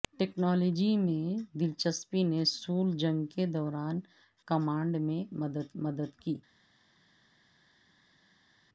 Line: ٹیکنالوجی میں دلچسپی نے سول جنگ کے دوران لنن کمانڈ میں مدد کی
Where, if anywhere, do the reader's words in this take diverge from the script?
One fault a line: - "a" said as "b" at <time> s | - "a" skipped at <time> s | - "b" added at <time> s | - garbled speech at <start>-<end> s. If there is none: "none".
- "لنن" skipped at 4.0 s
- "مدد" added at 5.8 s